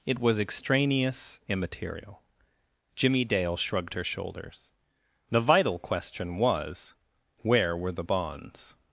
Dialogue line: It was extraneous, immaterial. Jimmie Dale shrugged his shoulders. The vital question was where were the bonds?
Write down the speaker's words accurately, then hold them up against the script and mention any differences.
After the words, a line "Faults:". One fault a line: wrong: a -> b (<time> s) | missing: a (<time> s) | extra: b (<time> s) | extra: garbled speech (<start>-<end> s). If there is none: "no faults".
It was extraneous, immaterial. Jimmie Dale shrugged her shoulders. The vital question was where were the bonds?
Faults:
wrong: his -> her (3.9 s)